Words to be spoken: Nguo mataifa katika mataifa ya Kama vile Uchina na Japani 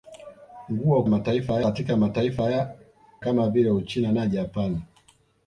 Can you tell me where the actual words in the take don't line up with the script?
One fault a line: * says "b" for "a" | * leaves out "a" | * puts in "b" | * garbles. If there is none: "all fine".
all fine